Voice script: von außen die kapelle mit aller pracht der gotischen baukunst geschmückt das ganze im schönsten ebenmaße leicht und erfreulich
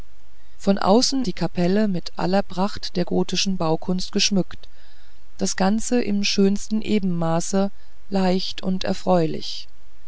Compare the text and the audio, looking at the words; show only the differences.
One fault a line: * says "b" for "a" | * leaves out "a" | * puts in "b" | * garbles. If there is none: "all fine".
all fine